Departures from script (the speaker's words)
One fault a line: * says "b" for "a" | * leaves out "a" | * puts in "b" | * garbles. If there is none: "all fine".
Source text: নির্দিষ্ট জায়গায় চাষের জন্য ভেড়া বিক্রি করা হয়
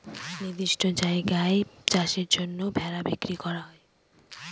all fine